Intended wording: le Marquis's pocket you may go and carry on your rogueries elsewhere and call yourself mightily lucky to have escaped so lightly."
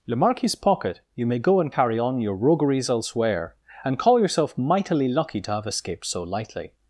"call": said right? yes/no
yes